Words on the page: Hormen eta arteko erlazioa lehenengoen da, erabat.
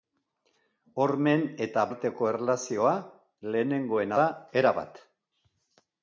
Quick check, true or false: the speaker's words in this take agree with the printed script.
true